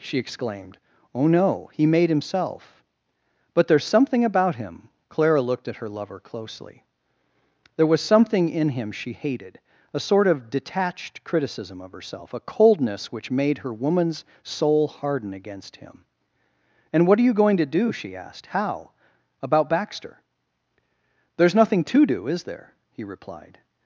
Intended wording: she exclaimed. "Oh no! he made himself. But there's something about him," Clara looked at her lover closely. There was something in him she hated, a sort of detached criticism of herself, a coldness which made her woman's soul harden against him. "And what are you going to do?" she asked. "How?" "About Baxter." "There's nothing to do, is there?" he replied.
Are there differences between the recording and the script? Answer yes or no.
no